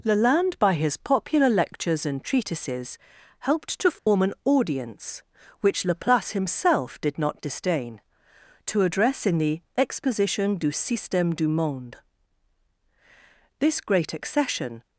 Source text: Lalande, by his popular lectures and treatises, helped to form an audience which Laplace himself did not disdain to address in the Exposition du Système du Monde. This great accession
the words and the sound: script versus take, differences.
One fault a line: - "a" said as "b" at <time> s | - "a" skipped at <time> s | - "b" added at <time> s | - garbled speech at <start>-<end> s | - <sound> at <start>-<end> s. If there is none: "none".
- dropout at 4.0-4.1 s